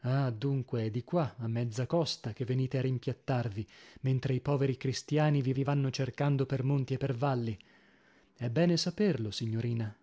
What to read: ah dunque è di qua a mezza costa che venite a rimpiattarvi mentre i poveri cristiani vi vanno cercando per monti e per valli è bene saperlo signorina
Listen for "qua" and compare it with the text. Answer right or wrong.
right